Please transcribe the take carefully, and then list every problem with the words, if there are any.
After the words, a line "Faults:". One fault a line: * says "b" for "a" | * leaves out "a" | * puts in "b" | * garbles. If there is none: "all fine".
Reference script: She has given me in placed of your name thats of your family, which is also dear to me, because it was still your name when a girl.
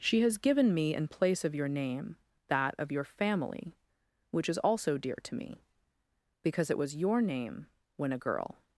She has given me in place of your name that of your family, which is also dear to me, because it was your name when a girl.
Faults:
* says "place" for "placed"
* says "that" for "thats"
* leaves out "still"